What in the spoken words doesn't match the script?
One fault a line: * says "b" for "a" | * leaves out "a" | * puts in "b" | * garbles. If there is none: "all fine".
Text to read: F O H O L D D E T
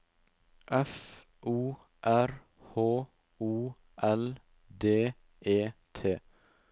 * puts in "R"
* leaves out "D"